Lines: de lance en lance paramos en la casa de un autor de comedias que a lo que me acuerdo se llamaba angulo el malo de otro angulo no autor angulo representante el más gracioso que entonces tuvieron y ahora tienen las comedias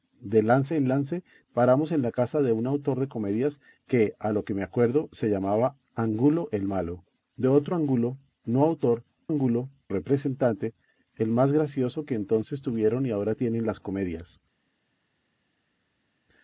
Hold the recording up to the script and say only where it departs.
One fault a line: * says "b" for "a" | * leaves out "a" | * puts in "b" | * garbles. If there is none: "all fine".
all fine